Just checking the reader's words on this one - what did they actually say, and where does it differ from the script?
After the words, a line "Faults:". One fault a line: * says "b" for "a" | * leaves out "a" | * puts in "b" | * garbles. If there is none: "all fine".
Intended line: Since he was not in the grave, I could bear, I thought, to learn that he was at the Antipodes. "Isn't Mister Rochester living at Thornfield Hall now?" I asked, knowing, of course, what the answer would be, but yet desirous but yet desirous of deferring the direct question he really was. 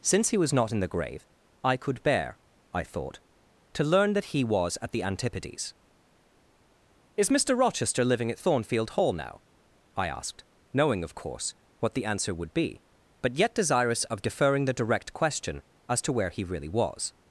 Since he was not in the grave, I could bear, I thought, to learn that he was at the Antipodes. "Is Mister Rochester living at Thornfield Hall now?" I asked, knowing, of course, what the answer would be, but yet desirous of deferring the direct question as to where he really was.
Faults:
* says "Is" for "Isn't"
* leaves out "but yet desirous"
* puts in "as to where"